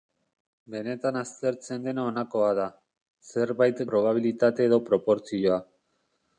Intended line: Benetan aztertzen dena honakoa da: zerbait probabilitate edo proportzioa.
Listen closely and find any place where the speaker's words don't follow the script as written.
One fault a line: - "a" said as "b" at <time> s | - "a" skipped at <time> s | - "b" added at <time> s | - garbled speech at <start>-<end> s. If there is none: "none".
none